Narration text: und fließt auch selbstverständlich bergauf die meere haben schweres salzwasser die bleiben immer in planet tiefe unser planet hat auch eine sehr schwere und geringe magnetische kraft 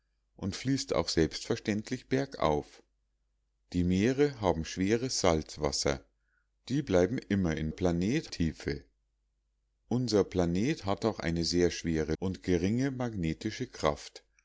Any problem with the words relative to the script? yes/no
no